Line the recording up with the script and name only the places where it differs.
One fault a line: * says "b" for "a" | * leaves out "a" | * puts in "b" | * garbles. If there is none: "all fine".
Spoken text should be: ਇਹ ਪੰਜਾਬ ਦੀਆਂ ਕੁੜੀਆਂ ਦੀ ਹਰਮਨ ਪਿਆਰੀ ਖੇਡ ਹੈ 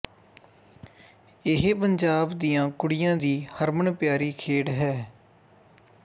all fine